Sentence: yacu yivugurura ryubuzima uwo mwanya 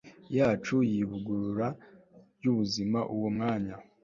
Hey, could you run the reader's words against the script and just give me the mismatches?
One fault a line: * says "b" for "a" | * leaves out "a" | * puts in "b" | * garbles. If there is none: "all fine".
all fine